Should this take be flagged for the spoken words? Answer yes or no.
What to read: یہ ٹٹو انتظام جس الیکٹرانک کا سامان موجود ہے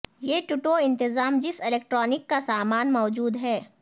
no